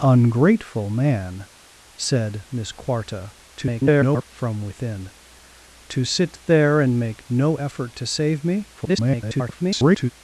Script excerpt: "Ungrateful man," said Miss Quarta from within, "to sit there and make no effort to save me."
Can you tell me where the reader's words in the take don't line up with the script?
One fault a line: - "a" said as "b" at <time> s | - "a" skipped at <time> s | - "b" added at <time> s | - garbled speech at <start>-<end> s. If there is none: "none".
- garbled speech at 3.6-4.2 s
- garbled speech at 8.8-10.1 s